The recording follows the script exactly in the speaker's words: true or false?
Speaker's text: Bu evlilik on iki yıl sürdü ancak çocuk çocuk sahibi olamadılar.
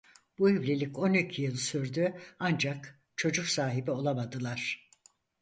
false